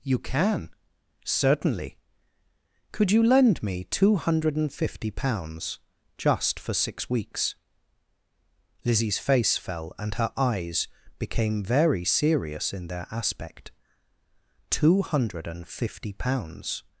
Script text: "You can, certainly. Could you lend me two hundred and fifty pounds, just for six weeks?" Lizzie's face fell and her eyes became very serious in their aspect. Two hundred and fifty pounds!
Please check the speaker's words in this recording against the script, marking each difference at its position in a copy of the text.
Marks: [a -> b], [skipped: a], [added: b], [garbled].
"You can, certainly. Could you lend me two hundred and fifty pounds, just for six weeks?" Lizzie's face fell and her eyes became very serious in their aspect. Two hundred and fifty pounds!